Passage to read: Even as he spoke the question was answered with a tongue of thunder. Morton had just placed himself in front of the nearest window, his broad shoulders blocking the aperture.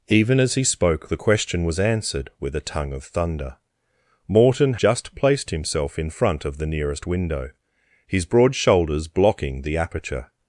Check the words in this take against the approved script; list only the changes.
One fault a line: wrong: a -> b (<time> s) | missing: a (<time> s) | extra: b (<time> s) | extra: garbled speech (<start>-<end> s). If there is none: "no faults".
missing: had (4.8 s)